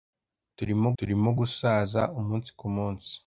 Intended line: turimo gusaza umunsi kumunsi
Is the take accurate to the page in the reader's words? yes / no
no